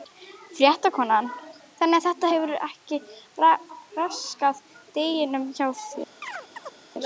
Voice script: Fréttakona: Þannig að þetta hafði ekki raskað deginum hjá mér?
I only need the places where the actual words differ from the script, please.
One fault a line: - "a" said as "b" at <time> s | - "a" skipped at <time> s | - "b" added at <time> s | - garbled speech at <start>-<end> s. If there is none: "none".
- "hafði" said as "hefur" at 2.3 s
- "mér" said as "þér" at 5.8 s